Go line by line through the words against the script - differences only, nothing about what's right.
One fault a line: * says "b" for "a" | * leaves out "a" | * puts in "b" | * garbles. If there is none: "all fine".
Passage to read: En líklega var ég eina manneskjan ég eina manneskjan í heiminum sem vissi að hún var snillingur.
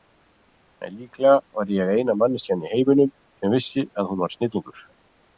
* leaves out "ég eina manneskjan"